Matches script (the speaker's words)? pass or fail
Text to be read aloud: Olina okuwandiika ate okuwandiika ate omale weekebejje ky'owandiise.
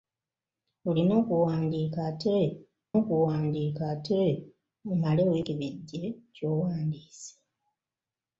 pass